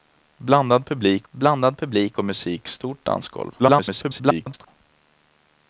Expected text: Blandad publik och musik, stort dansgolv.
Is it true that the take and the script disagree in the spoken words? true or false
true